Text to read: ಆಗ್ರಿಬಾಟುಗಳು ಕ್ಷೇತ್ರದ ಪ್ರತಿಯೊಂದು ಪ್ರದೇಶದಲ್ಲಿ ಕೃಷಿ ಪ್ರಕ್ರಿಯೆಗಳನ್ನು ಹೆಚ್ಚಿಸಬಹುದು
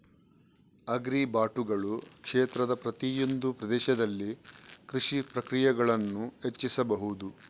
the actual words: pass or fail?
pass